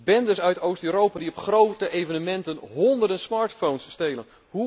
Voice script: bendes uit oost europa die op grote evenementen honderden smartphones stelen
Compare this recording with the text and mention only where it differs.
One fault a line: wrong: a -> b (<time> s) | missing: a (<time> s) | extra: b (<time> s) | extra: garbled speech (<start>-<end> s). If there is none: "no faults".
no faults